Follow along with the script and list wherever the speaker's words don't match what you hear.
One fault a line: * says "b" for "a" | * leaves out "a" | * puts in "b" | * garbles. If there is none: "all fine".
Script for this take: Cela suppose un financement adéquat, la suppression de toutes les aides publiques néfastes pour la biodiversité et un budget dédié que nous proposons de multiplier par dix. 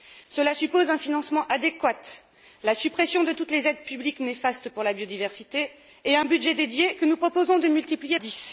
* leaves out "par"